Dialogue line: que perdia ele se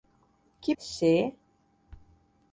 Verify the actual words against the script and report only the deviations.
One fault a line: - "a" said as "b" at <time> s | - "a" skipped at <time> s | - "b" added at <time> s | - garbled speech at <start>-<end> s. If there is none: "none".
- "perdia ele" skipped at 0.7 s